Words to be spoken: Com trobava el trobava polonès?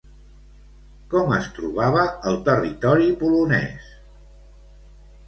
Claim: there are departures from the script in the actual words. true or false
true